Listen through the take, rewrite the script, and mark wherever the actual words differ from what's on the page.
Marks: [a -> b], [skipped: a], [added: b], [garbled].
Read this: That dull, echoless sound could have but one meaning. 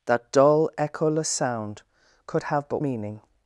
That dull, echoless sound could have but [skipped: one] meaning.